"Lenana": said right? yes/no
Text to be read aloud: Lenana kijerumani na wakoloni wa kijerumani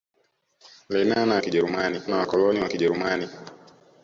yes